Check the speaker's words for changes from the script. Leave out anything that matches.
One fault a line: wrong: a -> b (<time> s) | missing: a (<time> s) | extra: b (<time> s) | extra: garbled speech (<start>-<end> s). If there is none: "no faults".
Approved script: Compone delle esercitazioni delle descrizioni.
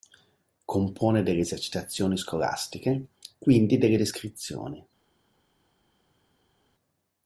extra: scolastiche quindi (2.2 s)